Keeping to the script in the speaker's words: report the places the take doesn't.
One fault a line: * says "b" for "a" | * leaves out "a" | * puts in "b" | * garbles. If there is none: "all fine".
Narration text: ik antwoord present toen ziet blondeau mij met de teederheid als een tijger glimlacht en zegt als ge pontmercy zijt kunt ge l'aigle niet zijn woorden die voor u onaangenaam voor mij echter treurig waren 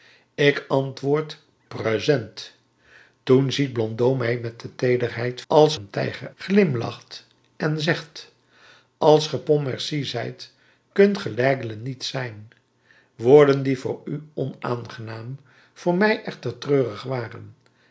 all fine